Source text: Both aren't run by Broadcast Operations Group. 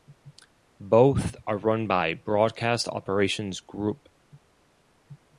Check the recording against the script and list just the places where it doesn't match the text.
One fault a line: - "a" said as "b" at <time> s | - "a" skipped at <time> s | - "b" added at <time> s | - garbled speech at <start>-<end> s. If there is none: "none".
- "aren't" said as "are" at 1.4 s